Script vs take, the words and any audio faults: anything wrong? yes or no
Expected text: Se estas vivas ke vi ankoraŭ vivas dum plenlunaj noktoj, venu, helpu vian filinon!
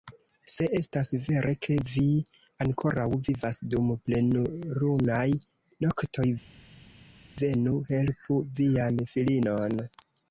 yes